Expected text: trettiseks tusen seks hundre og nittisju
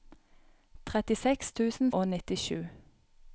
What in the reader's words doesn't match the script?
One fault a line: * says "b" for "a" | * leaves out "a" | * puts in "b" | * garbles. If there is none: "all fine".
* leaves out "seks hundre"